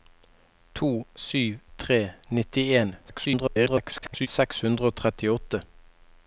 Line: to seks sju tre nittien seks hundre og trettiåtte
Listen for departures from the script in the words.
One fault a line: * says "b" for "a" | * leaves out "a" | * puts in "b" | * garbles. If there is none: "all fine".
* leaves out "seks"
* garbles